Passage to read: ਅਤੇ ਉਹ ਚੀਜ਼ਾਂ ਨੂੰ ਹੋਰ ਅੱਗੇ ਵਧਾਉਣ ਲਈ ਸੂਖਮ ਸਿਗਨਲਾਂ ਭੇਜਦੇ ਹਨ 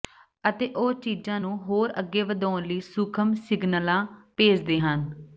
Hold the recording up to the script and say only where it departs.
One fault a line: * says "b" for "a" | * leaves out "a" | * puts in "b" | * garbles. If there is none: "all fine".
all fine